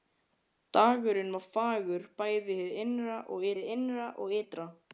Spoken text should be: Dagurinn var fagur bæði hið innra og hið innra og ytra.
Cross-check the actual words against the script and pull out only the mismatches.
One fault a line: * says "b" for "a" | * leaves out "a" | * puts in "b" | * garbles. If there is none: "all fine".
all fine